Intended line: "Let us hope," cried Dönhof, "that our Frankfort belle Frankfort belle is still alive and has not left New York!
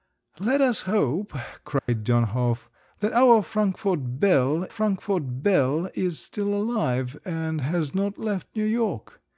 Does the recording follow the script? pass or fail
pass